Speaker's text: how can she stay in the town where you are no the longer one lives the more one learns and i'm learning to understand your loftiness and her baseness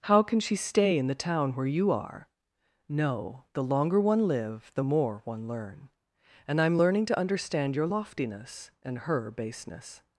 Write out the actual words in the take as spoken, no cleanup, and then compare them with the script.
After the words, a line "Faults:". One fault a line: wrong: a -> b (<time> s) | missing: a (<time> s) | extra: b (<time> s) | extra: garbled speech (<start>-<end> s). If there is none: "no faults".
how can she stay in the town where you are no the longer one live the more one learn and i'm learning to understand your loftiness and her baseness
Faults:
wrong: lives -> live (4.3 s)
wrong: learns -> learn (5.5 s)